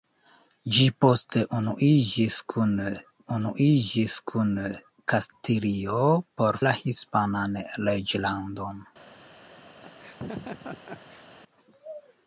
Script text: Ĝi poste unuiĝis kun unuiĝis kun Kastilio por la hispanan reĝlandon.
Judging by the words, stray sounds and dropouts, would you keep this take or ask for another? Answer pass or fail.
fail